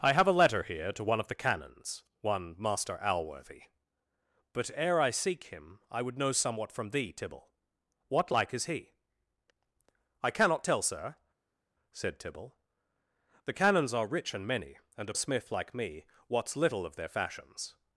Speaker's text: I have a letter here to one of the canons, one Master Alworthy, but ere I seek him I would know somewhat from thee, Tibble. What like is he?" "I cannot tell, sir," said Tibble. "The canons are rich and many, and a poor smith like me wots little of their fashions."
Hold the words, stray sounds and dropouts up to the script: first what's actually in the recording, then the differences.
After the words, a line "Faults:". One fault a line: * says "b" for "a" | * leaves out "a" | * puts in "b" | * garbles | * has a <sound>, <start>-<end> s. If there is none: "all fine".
I have a letter here to one of the canons, one Master Alworthy, but ere I seek him I would know somewhat from thee, Tibble. What like is he?" "I cannot tell, sir," said Tibble. "The canons are rich and many, and a smith like me wots little of their fashions."
Faults:
* leaves out "poor"